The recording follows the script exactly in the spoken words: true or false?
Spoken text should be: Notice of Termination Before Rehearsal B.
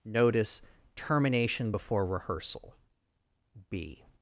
false